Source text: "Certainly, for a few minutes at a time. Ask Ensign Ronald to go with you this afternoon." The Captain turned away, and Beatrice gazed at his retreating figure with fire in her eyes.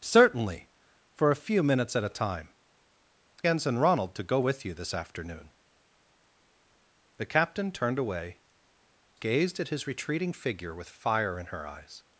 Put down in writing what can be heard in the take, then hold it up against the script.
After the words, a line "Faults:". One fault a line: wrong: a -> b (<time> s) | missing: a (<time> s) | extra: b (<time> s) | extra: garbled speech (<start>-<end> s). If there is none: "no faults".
"Certainly, for a few minutes at a time. Ensign Ronald to go with you this afternoon." The Captain turned away, gazed at his retreating figure with fire in her eyes.
Faults:
missing: Ask (2.5 s)
missing: and Beatrice (8.4 s)